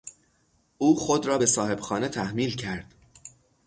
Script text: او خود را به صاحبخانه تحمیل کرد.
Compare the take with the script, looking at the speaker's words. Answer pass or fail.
pass